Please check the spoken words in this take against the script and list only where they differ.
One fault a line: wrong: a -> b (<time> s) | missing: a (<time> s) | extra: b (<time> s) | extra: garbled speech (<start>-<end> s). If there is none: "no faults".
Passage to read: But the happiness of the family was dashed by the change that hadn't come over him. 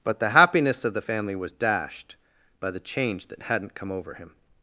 no faults